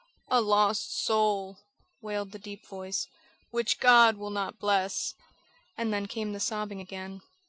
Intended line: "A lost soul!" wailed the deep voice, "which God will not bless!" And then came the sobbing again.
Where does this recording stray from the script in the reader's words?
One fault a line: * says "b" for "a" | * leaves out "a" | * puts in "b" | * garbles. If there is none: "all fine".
all fine